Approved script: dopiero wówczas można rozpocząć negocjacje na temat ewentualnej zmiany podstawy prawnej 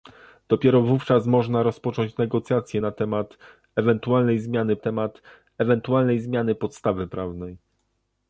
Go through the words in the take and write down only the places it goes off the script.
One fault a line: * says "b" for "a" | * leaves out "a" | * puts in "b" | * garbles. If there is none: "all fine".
* puts in "temat ewentualnej zmiany"